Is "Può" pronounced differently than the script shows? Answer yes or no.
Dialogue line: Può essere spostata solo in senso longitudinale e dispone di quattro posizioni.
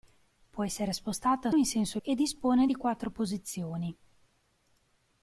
no